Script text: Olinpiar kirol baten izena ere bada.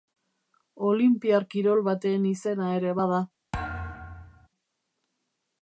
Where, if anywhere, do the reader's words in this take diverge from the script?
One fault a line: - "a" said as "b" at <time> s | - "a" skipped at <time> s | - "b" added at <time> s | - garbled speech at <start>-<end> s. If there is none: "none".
none